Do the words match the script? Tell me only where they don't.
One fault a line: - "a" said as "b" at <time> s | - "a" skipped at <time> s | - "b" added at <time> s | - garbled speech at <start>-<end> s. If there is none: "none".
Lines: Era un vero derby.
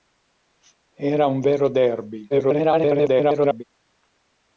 - garbled speech at 2.3-3.6 s